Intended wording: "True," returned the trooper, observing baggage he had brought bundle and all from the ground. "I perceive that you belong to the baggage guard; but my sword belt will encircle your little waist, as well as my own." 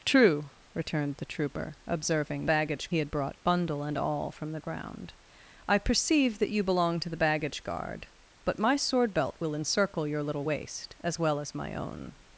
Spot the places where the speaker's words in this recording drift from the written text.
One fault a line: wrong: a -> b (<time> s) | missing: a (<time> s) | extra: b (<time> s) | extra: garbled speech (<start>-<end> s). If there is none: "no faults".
no faults